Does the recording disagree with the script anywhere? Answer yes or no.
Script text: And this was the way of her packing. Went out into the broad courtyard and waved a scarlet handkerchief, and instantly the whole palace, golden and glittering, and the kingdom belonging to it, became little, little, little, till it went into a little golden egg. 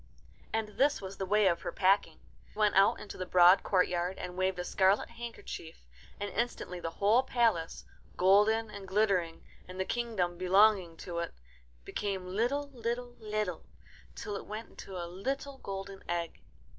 no